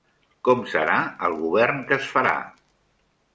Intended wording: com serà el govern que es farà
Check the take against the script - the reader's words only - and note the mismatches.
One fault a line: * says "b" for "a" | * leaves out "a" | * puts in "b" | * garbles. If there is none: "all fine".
all fine